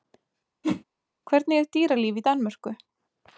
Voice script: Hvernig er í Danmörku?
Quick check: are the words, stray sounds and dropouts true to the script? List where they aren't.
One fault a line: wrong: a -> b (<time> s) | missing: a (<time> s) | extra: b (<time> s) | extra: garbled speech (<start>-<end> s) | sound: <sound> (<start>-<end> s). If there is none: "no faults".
sound: whoosh (0.6-0.8 s)
extra: dýralíf (1.8 s)